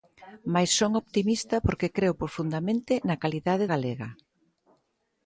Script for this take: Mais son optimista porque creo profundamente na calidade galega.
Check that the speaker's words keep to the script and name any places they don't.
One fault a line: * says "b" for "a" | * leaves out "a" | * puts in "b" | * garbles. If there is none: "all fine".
all fine